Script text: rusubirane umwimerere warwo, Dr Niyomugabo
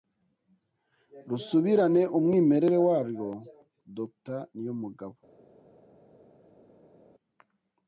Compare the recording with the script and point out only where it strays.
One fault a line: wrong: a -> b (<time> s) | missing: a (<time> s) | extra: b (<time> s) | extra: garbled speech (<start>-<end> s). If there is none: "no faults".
no faults